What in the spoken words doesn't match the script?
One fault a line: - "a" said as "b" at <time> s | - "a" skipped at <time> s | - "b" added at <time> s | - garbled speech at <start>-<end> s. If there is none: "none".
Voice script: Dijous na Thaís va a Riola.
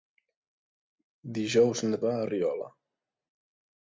- "Thaís" skipped at 2.0 s